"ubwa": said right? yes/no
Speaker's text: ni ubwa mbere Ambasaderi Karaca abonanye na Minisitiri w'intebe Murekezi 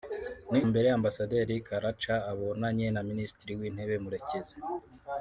no